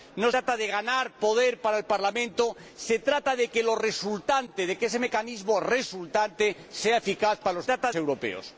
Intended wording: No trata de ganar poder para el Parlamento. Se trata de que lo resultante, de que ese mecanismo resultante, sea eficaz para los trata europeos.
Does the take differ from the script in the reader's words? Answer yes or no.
no